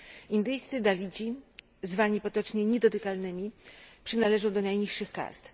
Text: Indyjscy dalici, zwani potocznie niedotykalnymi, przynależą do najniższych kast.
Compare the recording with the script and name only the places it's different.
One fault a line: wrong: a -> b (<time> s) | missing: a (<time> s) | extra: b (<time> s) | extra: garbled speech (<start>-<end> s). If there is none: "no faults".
no faults